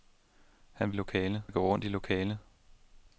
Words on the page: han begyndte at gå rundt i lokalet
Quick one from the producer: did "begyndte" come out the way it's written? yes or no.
no